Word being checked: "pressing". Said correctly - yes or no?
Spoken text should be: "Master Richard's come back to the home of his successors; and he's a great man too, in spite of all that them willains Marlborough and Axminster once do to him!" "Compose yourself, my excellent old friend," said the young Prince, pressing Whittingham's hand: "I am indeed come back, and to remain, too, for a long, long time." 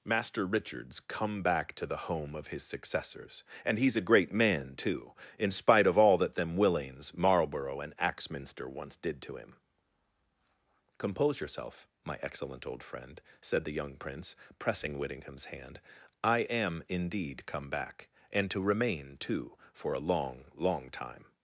yes